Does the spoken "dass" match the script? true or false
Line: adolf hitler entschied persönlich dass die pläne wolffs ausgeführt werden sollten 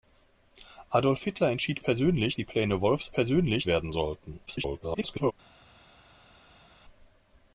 false